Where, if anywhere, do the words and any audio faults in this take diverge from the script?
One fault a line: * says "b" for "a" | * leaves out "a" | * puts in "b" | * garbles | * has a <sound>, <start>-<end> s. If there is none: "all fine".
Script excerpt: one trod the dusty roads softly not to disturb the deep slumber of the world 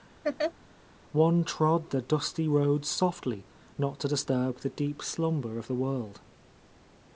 * has a laugh, 0.2-0.5 s